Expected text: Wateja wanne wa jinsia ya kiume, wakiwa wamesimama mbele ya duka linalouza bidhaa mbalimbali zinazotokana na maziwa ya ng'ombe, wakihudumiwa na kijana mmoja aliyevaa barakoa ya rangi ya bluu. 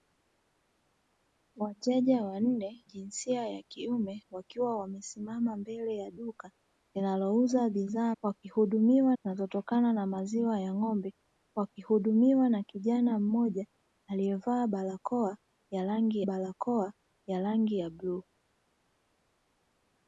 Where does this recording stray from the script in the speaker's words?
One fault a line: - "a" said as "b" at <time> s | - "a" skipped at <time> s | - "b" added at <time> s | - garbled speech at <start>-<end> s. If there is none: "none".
- "wa" skipped at 2.9 s
- "mbalimbali" said as "wakihudumiwa" at 8.2 s
- "barakoa ya rangi" added at 16.2 s